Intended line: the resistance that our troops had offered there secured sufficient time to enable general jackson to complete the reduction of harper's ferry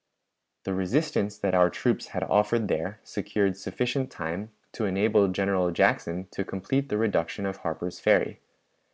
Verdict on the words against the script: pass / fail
pass